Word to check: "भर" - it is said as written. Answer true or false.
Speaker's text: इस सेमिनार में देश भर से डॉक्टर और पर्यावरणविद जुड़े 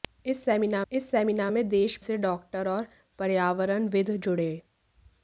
false